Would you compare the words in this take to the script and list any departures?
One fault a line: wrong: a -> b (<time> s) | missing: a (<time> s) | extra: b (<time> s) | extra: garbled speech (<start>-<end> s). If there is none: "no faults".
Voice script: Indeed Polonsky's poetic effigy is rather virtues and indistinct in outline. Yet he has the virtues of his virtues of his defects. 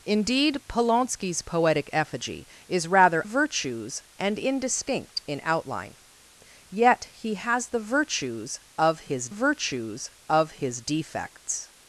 no faults